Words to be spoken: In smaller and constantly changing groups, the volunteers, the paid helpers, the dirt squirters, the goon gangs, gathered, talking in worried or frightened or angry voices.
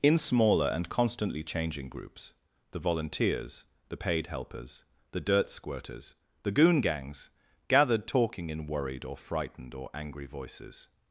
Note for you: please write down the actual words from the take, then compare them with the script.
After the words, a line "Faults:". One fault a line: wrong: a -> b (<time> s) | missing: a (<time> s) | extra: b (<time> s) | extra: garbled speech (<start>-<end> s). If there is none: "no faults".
In smaller and constantly changing groups, the volunteers, the paid helpers, the dirt squirters, the goon gangs, gathered, talking in worried or frightened or angry voices.
Faults:
no faults